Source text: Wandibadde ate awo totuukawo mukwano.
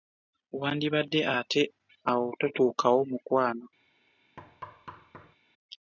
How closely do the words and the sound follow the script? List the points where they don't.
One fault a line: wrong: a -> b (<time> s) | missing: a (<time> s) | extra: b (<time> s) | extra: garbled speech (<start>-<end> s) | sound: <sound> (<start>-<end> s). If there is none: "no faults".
sound: thud (4.4-5.4 s)